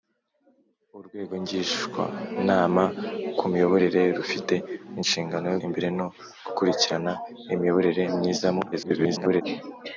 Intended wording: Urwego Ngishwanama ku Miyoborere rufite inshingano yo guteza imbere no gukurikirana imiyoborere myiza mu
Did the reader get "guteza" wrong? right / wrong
wrong